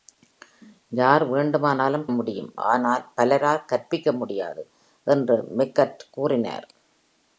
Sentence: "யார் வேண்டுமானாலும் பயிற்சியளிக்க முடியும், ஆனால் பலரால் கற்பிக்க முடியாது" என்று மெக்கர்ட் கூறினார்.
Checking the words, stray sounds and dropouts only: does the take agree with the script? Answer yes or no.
no